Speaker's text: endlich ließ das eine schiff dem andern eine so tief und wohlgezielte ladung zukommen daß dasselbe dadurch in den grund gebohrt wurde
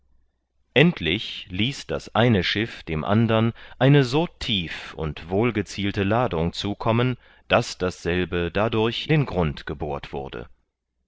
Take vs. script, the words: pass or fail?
fail